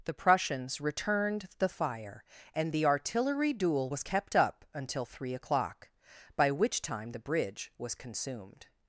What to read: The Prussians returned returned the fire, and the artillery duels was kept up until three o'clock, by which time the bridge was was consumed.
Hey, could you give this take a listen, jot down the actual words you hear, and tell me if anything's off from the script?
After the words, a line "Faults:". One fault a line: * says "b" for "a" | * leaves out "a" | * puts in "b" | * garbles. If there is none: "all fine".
The Prussians returned the fire, and the artillery duel was kept up until three o'clock, by which time the bridge was consumed.
Faults:
* leaves out "returned"
* says "duel" for "duels"
* leaves out "was"